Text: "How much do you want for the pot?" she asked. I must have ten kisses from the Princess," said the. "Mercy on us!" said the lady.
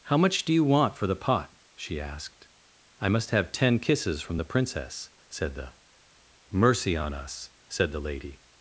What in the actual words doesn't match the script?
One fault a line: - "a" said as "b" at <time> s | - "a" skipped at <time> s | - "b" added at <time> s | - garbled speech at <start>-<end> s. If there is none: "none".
none